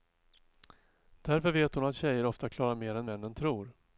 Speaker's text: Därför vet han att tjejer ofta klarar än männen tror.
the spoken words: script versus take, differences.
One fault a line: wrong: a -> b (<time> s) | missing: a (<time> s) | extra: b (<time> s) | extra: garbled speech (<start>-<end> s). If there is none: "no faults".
wrong: han -> hon (1.8 s)
extra: mer (2.8 s)